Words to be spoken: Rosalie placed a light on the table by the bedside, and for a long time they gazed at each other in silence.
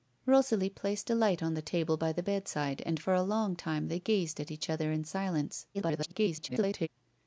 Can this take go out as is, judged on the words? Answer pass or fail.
fail